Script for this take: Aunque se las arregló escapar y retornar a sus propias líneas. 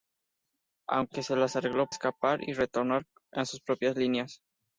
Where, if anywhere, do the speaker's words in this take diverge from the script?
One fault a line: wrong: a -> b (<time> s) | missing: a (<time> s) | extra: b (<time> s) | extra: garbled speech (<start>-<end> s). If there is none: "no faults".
no faults